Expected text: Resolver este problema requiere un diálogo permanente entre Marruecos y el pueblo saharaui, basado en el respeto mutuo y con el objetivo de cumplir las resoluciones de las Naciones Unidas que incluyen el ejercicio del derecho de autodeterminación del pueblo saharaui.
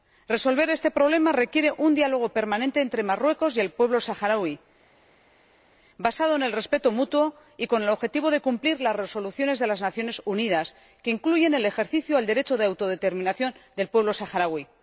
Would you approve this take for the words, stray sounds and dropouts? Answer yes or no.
yes